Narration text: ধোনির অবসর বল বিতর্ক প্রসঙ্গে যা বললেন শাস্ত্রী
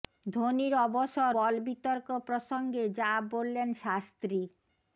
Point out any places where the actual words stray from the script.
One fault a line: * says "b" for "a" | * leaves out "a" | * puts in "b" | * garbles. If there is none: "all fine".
all fine